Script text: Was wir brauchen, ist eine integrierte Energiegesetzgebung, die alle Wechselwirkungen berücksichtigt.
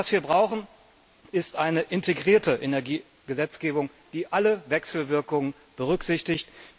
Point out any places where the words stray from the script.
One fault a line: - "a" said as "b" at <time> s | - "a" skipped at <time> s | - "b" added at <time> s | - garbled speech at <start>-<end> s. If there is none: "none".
none